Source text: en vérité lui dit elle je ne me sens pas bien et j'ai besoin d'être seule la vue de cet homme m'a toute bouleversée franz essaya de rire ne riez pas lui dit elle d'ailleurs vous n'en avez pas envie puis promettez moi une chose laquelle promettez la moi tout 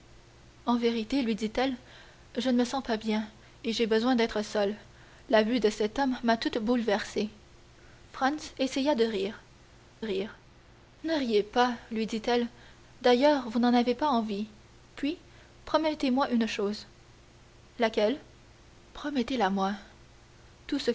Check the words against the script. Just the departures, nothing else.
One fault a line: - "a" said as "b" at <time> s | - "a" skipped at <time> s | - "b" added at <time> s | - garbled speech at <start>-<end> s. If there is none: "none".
- "rire" added at 10.0 s